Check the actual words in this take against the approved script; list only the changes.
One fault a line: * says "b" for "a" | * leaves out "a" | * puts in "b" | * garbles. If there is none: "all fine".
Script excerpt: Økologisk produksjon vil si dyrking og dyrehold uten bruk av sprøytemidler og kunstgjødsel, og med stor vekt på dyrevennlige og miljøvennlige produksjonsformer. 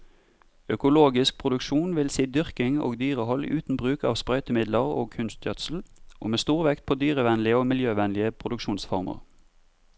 all fine